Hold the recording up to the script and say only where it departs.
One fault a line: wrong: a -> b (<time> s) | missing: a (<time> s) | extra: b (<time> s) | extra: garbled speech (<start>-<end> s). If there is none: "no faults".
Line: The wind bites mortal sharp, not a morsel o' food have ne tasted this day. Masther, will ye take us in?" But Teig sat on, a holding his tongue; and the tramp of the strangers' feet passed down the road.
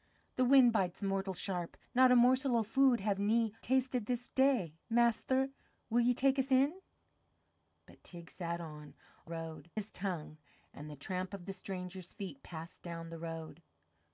wrong: holding -> road (9.3 s)